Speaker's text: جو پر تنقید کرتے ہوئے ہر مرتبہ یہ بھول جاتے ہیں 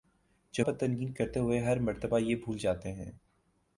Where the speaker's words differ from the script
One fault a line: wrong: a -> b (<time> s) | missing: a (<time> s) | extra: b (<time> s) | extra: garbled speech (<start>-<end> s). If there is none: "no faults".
no faults